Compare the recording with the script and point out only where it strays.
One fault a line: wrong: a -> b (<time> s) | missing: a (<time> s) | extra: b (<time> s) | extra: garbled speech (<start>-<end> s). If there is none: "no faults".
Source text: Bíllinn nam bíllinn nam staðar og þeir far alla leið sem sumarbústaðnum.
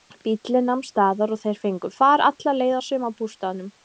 missing: bíllinn nam (0.8 s)
extra: fengu (1.6 s)
wrong: sem -> að (2.8 s)